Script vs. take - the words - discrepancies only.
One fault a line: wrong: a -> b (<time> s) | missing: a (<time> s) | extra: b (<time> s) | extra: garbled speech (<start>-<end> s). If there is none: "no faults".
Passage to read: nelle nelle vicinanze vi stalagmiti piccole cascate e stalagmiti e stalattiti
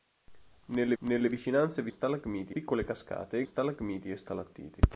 no faults